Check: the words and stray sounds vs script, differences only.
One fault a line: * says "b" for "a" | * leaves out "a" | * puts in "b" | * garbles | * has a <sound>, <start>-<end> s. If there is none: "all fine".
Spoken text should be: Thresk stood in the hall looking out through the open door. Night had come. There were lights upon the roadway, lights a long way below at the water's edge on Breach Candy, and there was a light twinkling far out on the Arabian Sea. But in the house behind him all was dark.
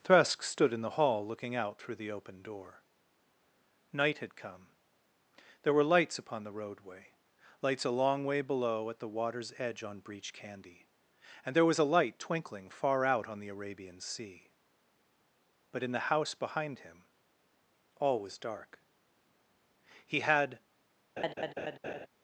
* puts in "He had"
* has a laugh, 21.2-22.1 s